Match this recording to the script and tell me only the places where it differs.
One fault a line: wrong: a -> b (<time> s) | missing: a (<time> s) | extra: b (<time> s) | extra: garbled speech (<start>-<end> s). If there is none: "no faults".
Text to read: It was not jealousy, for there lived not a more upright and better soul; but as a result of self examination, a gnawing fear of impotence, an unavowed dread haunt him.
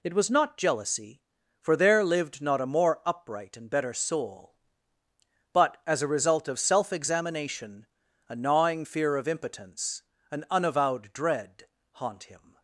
no faults